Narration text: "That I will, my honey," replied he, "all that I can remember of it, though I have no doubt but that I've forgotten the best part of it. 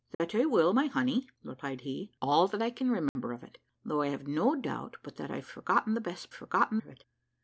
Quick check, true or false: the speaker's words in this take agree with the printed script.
false